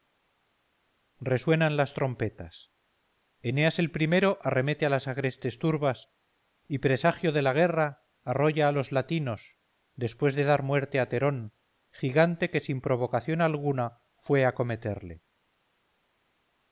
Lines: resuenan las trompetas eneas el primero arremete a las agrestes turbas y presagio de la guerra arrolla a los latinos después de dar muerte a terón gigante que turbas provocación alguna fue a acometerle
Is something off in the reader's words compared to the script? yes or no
yes